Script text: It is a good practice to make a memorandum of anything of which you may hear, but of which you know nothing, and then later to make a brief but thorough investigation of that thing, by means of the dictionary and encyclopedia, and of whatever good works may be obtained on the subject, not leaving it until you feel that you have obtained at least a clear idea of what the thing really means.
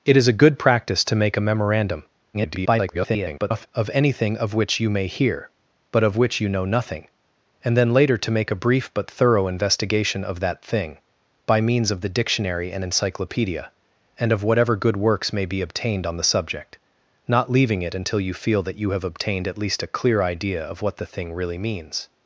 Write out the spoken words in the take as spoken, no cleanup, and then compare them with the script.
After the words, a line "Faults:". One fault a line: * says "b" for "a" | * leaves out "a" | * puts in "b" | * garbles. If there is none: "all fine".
It is a good practice to make a memorandum [garbled] of anything of which you may hear, but of which you know nothing, and then later to make a brief but thorough investigation of that thing, by means of the dictionary and encyclopedia, and of whatever good works may be obtained on the subject, not leaving it until you feel that you have obtained at least a clear idea of what the thing really means.
Faults:
* garbles